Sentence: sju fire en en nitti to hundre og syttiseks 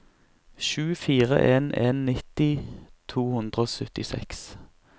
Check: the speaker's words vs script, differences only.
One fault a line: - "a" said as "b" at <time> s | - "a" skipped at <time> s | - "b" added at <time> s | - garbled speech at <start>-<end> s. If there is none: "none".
none